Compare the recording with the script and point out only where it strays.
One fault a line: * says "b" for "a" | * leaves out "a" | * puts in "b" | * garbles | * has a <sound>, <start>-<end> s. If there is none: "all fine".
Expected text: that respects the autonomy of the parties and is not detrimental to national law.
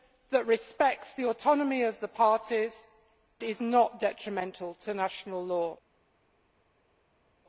* leaves out "and"